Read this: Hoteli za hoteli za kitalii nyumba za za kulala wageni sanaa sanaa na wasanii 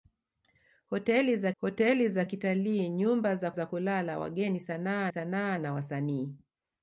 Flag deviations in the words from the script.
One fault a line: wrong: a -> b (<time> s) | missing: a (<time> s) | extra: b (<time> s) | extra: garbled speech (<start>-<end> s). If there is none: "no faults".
no faults